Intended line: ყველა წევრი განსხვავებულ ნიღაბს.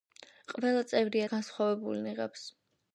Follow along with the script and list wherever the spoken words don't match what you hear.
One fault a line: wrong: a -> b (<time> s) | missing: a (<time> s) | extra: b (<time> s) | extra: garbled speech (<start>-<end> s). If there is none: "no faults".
no faults